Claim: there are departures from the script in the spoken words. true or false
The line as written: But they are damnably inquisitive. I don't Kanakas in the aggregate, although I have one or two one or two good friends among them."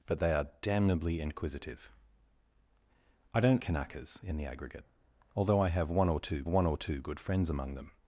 false